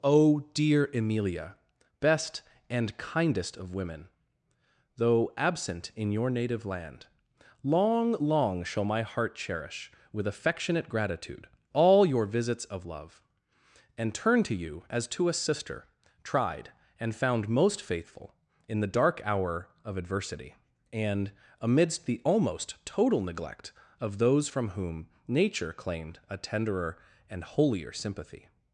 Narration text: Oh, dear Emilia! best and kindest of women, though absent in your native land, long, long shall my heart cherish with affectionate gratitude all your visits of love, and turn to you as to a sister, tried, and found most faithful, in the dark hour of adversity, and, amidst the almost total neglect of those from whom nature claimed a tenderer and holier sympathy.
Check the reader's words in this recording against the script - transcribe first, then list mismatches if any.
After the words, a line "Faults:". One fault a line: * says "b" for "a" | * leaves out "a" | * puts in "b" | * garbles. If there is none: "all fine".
Oh, dear Emilia! best and kindest of women, though absent in your native land, long, long shall my heart cherish with affectionate gratitude all your visits of love, and turn to you as to a sister, tried, and found most faithful, in the dark hour of adversity, and, amidst the almost total neglect of those from whom nature claimed a tenderer and holier sympathy.
Faults:
all fine